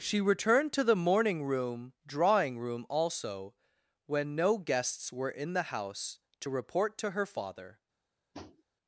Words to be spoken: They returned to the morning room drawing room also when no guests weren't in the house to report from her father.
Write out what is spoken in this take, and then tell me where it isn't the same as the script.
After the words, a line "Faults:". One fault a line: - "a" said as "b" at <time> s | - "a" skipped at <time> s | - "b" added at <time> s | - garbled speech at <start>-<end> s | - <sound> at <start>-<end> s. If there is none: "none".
She returned to the morning room drawing room also when no guests were in the house to report to her father.
Faults:
- "They" said as "She" at 0.0 s
- "weren't" said as "were" at 5.1 s
- "from" said as "to" at 7.0 s
- tap at 8.3-8.6 s